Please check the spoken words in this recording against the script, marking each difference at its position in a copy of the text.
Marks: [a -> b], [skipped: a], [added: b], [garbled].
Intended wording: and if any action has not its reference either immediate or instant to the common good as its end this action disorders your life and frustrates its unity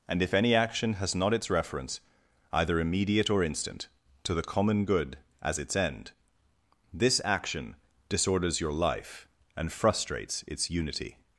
and if any action has not its reference either immediate or instant to the common good as its end this action disorders your life and frustrates its unity